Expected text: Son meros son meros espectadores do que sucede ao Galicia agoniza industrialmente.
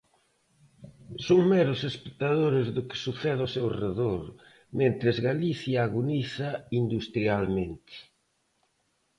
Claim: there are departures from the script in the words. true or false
true